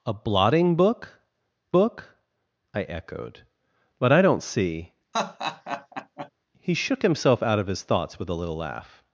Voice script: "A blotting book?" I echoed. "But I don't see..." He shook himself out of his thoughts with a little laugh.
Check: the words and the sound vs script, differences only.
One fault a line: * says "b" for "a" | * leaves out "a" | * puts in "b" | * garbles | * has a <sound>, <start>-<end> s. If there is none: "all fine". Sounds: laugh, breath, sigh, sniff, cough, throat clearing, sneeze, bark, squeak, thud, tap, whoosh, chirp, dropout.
* puts in "book"
* has a laugh, 5.1-6.3 s